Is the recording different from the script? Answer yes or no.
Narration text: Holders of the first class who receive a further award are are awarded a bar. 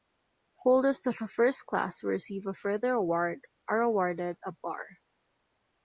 yes